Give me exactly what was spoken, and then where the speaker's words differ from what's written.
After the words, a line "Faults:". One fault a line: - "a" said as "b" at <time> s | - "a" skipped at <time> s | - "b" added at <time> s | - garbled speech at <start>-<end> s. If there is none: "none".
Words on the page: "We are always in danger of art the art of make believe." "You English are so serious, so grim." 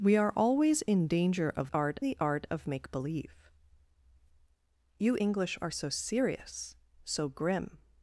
"We are always in danger of art the art of make believe." "You English are so serious, so grim."
Faults:
none